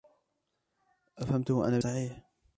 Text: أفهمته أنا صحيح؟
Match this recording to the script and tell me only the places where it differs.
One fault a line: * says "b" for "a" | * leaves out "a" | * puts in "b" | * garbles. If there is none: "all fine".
all fine